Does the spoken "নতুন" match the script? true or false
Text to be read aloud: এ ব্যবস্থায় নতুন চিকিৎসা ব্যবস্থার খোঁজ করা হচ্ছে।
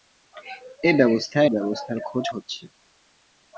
false